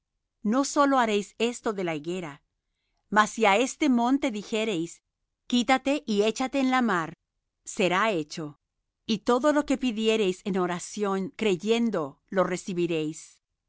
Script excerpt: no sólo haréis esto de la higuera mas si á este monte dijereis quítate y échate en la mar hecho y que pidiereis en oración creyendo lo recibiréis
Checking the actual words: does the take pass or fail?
fail